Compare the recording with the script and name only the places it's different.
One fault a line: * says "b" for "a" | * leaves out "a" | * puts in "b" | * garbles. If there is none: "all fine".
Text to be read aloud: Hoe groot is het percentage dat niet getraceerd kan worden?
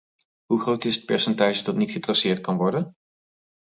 all fine